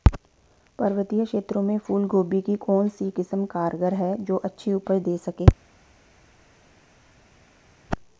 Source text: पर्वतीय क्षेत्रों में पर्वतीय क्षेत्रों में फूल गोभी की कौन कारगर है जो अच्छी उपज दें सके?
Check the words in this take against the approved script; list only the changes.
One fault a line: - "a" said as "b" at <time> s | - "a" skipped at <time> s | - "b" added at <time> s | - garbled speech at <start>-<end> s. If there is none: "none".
- "पर्वतीय क्षेत्रों में" skipped at 1.8 s
- "सी किस्म" added at 2.9 s